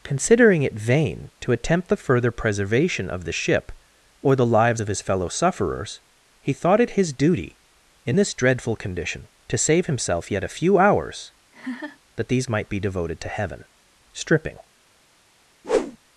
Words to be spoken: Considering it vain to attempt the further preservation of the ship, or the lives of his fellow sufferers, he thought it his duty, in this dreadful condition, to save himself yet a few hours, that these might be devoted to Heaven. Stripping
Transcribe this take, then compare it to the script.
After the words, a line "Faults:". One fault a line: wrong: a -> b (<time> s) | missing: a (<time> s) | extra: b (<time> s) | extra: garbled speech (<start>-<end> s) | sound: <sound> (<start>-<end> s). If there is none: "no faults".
Considering it vain to attempt the further preservation of the ship, or the lives of his fellow sufferers, he thought it his duty, in this dreadful condition, to save himself yet a few hours, that these might be devoted to Heaven. Stripping
Faults:
sound: laugh (11.5-12.0 s)
sound: whoosh (15.6-16.0 s)